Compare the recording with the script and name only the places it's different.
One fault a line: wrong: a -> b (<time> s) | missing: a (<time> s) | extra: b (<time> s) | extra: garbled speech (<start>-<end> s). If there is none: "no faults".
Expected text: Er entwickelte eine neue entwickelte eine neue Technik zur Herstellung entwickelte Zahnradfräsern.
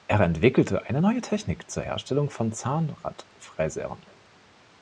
missing: entwickelte eine neue (1.2 s)
wrong: entwickelte -> von (2.3 s)